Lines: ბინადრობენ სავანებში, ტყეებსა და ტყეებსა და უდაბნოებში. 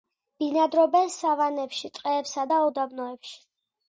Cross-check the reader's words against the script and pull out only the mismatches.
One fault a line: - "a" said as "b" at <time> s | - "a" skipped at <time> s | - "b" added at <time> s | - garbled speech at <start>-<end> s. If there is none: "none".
- "ტყეებსა და" skipped at 2.6 s